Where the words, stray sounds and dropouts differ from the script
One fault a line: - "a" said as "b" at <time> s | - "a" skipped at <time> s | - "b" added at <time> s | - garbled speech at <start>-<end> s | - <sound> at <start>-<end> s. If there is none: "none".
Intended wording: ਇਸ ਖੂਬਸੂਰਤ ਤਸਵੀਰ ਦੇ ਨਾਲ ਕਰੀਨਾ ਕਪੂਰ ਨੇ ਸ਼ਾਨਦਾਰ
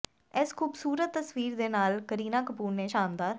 none